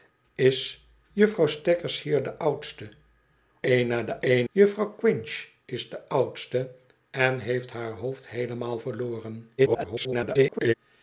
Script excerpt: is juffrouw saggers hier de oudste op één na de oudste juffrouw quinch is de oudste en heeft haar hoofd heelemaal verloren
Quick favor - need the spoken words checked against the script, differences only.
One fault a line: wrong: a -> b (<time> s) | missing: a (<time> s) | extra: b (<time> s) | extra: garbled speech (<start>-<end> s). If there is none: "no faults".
missing: op (2.9 s)
wrong: oudste -> één (4.2 s)
extra: garbled speech (9.6-10.7 s)